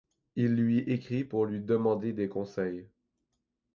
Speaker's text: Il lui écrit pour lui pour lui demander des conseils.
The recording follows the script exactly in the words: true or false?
false